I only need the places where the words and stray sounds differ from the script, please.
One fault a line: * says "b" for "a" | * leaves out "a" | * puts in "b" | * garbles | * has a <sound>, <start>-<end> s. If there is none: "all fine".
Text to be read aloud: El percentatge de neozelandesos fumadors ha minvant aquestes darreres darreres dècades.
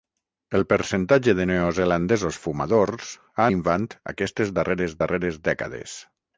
all fine